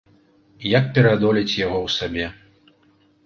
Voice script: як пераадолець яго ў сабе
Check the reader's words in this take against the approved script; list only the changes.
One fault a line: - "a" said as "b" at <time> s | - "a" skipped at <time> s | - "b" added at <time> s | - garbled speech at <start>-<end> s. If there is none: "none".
none